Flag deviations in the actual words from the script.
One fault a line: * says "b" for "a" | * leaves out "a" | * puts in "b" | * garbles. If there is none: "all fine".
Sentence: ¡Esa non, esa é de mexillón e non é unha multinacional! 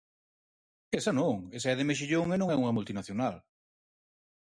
all fine